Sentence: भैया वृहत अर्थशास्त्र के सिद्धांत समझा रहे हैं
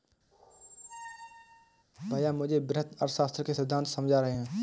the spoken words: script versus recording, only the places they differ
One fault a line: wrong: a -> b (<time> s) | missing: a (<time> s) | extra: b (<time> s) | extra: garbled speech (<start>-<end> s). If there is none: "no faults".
extra: मुझे (2.3 s)